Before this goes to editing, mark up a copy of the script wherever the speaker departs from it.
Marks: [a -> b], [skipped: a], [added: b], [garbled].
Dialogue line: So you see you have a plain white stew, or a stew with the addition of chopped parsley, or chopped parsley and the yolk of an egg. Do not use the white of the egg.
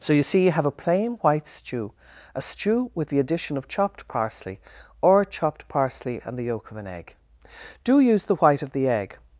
So you see you have a plain white stew, [skipped: or] a stew with the addition of chopped parsley, or chopped parsley and the yolk of an egg. Do [skipped: not] use the white of the egg.